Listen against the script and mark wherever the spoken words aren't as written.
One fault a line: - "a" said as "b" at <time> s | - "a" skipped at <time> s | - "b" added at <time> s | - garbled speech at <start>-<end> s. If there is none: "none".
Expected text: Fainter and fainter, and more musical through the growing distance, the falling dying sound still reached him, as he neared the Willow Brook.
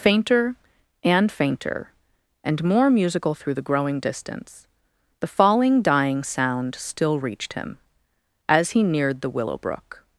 none